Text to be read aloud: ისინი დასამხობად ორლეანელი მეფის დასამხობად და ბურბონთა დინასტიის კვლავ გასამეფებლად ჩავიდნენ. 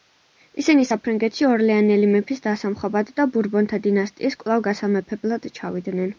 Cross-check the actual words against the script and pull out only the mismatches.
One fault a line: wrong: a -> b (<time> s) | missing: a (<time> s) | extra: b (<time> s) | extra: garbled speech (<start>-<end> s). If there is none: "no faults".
wrong: დასამხობად -> საფრანგეთში (0.9 s)